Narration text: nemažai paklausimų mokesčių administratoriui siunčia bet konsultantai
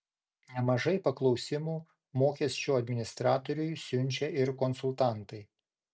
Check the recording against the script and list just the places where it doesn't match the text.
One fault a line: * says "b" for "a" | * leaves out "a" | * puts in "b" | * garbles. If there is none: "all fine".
* says "ir" for "bet"